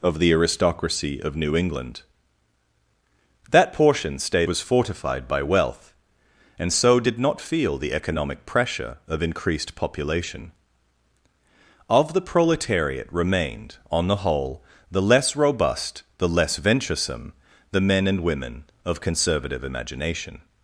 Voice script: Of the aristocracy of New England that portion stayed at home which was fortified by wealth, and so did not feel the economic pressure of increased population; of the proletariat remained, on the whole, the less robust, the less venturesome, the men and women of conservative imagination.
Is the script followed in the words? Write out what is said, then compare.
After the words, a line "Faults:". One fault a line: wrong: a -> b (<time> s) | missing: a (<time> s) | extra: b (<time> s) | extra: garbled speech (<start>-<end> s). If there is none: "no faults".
Of the aristocracy of New England that portion stayed was fortified by wealth, and so did not feel the economic pressure of increased population; of the proletariat remained, on the whole, the less robust, the less venturesome, the men and women of conservative imagination.
Faults:
missing: at home which (4.5 s)